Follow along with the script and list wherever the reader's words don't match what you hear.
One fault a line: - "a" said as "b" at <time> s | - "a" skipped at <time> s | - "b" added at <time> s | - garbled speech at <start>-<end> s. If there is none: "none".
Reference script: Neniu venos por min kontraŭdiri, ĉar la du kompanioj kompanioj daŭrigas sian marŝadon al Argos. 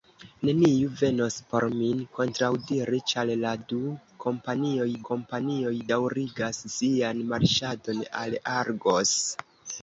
none